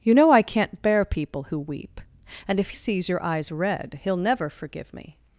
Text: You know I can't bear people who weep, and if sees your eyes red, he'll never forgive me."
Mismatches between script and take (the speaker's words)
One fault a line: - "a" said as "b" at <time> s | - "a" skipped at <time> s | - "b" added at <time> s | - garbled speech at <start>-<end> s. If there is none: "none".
none